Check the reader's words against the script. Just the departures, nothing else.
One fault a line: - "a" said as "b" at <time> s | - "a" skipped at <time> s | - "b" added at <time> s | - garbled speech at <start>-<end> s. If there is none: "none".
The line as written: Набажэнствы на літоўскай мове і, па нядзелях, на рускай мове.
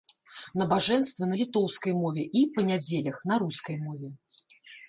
none